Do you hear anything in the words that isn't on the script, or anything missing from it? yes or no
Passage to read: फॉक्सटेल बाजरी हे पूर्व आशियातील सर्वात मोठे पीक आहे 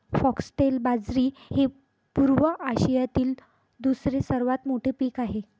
yes